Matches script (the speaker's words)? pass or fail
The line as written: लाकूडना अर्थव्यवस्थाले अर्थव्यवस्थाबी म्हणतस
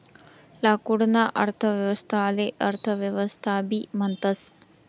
pass